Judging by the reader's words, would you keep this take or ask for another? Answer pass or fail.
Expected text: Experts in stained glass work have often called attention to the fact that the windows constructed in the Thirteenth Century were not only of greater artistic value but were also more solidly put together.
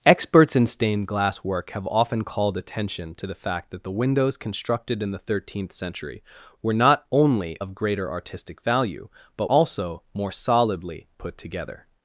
fail